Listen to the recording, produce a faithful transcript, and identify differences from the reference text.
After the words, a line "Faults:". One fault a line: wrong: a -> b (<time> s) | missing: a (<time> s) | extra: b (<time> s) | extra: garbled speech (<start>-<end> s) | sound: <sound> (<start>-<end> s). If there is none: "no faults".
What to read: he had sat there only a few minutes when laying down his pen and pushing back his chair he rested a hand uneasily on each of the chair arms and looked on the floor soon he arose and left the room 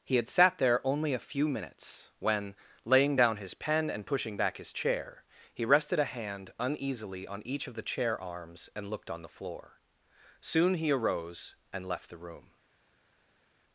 he had sat there only a few minutes when laying down his pen and pushing back his chair he rested a hand uneasily on each of the chair arms and looked on the floor soon he arose and left the room
Faults:
no faults